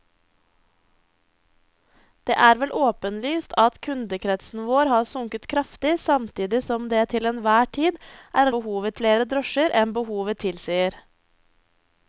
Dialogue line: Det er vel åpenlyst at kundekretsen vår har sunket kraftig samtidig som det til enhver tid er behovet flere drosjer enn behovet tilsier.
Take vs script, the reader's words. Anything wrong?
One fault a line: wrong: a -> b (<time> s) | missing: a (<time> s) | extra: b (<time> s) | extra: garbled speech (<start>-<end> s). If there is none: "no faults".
no faults